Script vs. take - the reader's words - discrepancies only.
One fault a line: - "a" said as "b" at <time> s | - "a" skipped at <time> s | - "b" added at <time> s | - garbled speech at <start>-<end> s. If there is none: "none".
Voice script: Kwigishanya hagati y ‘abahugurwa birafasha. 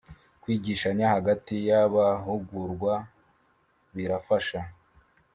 none